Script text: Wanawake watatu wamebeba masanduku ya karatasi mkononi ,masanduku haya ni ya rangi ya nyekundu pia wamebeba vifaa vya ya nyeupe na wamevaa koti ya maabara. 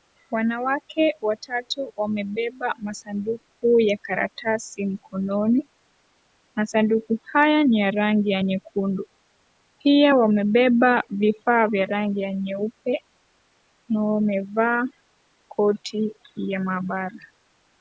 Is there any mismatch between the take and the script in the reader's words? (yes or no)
yes